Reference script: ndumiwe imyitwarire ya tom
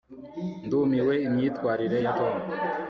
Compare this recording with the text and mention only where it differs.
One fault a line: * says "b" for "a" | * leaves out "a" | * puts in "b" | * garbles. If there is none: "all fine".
all fine